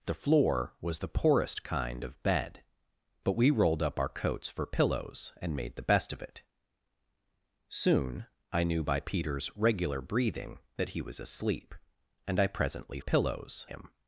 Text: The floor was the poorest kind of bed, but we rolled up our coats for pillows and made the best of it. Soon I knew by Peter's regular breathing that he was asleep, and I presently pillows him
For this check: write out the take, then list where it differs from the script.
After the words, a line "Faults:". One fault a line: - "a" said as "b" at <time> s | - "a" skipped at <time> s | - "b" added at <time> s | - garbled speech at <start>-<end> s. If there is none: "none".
The floor was the poorest kind of bed, but we rolled up our coats for pillows and made the best of it. Soon I knew by Peter's regular breathing that he was asleep, and I presently pillows him
Faults:
none